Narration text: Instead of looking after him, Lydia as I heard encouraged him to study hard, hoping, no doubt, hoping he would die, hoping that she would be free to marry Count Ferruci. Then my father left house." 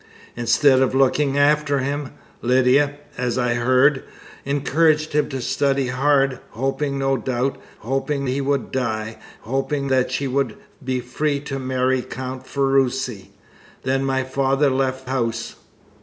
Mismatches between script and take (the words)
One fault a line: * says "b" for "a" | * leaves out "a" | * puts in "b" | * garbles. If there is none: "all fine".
all fine